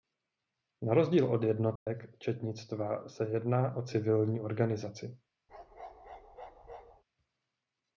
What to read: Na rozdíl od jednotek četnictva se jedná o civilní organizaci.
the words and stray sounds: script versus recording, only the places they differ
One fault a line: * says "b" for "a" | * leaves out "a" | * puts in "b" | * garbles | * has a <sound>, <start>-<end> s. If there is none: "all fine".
* has a dropout, 1.8-1.9 s
* has a bark, 5.5-7.0 s